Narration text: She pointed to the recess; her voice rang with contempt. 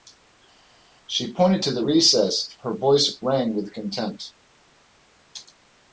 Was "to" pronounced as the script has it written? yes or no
yes